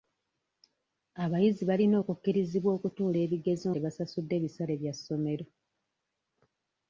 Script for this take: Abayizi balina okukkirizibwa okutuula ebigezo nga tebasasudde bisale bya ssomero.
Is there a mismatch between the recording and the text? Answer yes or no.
yes